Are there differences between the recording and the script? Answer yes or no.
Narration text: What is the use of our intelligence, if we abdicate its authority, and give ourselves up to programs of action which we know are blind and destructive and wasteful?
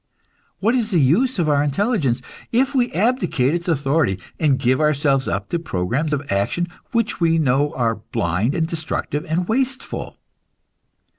no